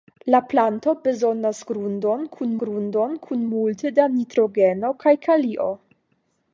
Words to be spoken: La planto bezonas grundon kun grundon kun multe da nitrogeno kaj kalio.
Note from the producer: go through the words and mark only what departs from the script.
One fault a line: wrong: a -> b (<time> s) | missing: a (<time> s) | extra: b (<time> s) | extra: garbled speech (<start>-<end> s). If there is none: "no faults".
no faults